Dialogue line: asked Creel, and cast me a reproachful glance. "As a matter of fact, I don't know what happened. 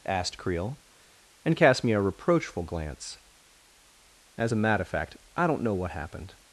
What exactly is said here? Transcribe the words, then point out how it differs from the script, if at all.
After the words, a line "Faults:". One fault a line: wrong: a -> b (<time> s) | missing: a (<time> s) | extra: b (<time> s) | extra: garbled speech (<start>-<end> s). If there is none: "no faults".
asked Creel, and cast me a reproachful glance. "As a matter of fact, I don't know what happened.
Faults:
no faults